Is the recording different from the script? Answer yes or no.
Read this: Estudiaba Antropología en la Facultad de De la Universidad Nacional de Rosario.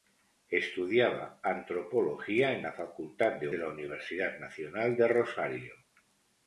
no